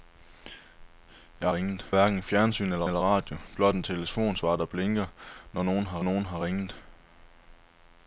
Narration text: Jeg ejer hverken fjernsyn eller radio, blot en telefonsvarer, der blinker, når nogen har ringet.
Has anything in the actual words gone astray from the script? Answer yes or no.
yes